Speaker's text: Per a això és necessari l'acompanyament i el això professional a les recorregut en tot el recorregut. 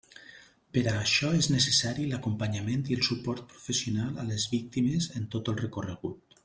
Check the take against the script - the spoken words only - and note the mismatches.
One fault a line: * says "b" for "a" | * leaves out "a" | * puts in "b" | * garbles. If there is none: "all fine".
* says "suport" for "això"
* says "víctimes" for "recorregut"